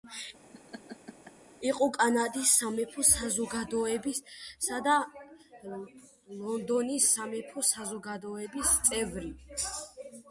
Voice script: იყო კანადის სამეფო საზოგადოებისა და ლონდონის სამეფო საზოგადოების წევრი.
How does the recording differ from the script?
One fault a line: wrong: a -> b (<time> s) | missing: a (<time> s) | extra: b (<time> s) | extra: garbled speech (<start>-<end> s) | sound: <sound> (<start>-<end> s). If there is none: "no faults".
sound: laugh (0.5-1.3 s)